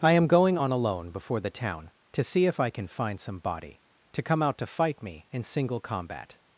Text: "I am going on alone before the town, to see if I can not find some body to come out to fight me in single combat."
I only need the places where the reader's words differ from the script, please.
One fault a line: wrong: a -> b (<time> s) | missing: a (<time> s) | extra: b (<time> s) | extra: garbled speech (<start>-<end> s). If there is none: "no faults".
missing: not (2.9 s)